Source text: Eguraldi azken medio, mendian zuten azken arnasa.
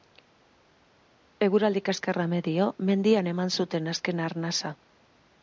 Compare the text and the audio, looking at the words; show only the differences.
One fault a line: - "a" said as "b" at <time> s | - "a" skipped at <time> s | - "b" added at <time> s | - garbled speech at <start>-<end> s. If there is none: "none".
- "azken" said as "kaskarra" at 1.9 s
- "eman" added at 3.3 s